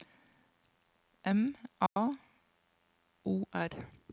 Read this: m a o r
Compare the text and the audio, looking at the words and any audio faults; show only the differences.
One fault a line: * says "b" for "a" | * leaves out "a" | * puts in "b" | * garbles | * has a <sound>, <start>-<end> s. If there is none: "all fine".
* has a dropout, 1.9-2.0 s